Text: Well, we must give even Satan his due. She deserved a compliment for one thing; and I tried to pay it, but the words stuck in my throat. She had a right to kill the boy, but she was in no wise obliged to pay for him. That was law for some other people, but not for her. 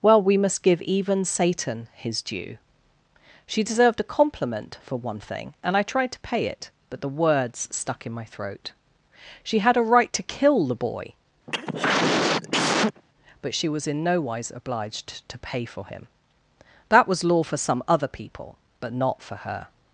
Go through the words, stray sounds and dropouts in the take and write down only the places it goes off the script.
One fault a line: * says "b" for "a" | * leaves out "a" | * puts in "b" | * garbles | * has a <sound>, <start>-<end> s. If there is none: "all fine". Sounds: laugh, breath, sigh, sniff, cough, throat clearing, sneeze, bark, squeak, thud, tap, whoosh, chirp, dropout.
* has a cough, 11.5-13.0 s